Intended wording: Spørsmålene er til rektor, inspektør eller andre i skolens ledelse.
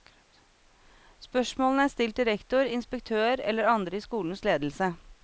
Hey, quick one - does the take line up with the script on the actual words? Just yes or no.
no